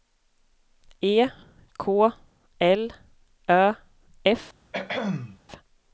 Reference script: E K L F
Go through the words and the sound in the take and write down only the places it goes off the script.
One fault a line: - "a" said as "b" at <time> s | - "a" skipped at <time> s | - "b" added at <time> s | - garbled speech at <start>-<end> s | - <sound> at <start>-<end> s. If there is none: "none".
- "Ö" added at 3.5 s
- throat clearing at 4.7-5.4 s